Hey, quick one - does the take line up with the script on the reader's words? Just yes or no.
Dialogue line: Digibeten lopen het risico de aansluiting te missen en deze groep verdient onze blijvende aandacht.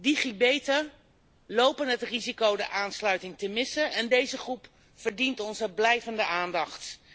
yes